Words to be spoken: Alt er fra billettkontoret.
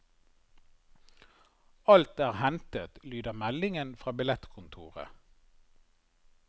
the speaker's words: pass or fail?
fail